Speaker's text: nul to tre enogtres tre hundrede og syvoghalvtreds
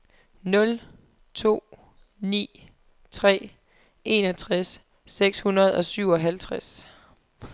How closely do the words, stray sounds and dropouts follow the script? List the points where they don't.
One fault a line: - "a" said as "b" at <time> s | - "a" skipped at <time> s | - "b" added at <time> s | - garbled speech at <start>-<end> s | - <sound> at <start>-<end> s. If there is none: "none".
- "ni" added at 2.2 s
- "tre" said as "seks" at 5.0 s